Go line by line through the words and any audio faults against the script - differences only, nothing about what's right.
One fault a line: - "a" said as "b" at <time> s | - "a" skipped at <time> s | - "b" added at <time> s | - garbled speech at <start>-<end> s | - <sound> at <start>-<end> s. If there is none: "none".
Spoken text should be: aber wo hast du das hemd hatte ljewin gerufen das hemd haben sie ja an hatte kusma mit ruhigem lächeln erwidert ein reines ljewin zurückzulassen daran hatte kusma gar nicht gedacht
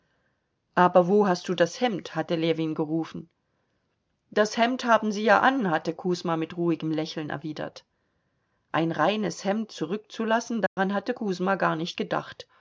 - "ljewin" said as "hemd" at 9.4 s
- dropout at 10.7-10.8 s